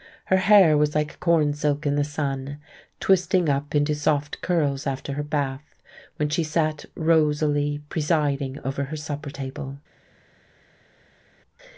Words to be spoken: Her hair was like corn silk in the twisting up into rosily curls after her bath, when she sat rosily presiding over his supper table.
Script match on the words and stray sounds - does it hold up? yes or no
no